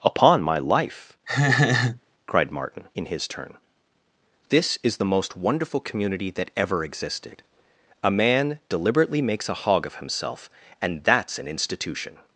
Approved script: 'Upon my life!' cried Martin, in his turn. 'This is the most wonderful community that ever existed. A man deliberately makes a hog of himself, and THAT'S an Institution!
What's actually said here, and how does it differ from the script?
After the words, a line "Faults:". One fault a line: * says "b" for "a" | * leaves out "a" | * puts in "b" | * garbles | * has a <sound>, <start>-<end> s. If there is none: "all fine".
'Upon my life!' cried Martin, in his turn. 'This is the most wonderful community that ever existed. A man deliberately makes a hog of himself, and THAT'S an Institution!
Faults:
* has a laugh, 1.3-2.0 s